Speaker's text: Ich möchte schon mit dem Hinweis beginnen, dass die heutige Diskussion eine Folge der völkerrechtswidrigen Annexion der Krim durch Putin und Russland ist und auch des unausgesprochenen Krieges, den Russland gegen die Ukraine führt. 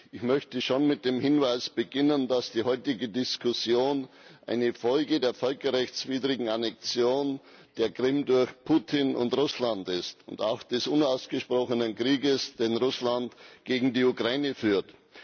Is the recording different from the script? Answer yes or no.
no